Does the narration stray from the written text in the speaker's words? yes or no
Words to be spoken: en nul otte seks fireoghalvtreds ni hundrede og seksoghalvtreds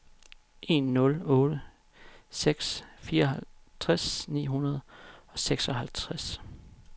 no